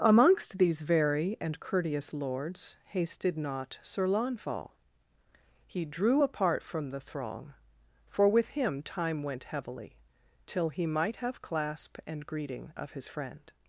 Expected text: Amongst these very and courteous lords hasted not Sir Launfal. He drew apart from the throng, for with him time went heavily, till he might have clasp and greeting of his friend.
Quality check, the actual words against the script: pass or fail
pass